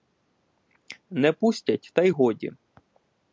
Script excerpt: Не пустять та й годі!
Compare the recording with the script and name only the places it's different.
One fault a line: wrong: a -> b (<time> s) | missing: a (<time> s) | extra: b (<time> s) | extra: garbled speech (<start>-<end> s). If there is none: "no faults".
no faults